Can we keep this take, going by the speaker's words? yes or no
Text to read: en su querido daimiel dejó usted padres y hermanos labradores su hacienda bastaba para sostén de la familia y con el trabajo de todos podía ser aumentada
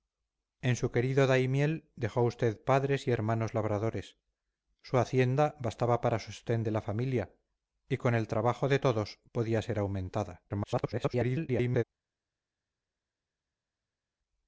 no